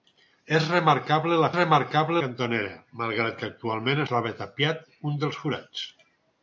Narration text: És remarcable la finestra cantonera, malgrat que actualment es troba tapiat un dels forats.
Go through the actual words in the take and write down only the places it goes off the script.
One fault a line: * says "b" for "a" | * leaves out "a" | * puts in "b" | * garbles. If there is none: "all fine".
* says "remarcable" for "finestra"
* leaves out "es"